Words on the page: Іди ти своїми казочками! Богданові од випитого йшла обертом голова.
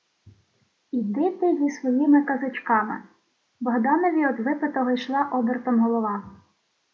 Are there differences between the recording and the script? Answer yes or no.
yes